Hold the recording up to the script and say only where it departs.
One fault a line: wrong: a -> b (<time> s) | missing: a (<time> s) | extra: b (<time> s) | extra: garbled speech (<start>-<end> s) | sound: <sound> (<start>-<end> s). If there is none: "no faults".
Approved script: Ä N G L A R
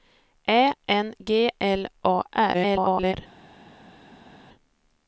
extra: garbled speech (2.5-3.1 s)